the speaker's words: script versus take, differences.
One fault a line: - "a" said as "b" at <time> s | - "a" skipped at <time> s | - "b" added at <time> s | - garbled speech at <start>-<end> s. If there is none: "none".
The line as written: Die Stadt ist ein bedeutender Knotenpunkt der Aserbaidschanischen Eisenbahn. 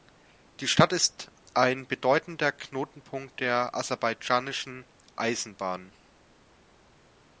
none